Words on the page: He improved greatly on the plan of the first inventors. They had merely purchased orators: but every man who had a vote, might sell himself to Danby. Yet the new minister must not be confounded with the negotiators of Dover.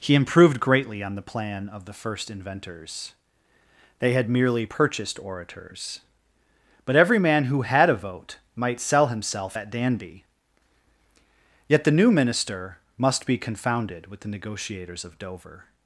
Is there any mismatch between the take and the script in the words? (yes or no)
yes